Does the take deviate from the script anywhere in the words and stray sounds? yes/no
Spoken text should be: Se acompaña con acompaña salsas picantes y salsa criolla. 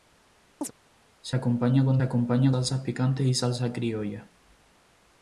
yes